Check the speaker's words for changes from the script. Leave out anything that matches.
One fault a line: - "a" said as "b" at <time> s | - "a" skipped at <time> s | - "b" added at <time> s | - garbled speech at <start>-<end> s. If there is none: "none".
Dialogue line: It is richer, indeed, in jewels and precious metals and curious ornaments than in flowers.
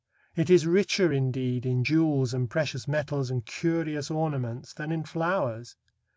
none